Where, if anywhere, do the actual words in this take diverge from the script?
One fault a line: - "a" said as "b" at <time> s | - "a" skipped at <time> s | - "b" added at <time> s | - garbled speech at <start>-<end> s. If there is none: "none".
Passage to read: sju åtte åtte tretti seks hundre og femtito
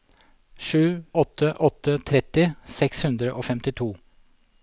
none